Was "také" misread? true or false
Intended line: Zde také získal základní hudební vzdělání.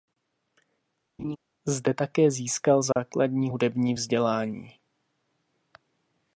false